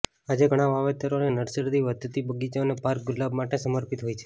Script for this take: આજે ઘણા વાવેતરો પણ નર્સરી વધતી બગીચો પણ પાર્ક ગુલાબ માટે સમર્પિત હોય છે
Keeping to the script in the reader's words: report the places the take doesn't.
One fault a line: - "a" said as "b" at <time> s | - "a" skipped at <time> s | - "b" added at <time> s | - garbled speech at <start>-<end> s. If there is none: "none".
- "પણ" said as "અને" at 1.2 s
- "પણ" said as "અને" at 2.6 s